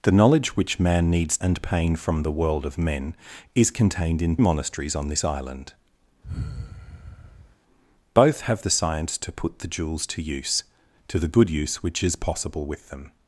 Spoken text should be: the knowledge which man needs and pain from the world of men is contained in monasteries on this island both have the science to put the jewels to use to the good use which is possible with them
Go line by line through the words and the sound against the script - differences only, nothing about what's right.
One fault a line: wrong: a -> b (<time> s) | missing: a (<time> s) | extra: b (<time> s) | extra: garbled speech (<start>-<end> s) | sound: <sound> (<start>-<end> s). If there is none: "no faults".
sound: sigh (6.2-7.6 s)